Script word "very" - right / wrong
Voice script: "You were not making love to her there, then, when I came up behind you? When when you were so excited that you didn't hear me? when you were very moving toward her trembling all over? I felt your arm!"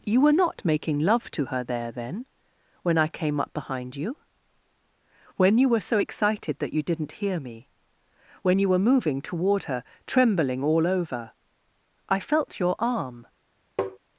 wrong